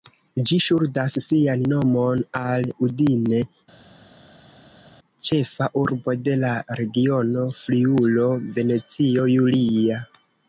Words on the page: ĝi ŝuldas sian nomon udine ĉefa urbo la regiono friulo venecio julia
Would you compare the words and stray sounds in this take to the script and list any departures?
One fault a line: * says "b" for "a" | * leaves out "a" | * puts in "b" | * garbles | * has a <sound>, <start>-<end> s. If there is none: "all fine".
* puts in "al"
* puts in "de"